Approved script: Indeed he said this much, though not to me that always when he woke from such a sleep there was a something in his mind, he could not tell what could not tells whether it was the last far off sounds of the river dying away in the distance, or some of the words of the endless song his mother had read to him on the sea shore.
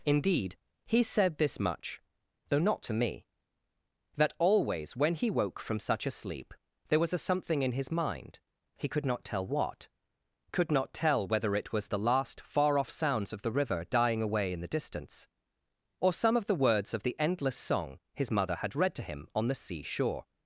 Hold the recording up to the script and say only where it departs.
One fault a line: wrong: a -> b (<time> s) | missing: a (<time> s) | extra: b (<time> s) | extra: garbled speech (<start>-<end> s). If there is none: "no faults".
wrong: tells -> tell (10.9 s)